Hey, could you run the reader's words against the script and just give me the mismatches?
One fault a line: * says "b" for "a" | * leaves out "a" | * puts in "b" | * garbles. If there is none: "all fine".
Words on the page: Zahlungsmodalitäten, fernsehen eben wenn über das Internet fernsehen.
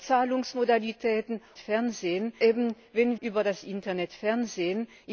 all fine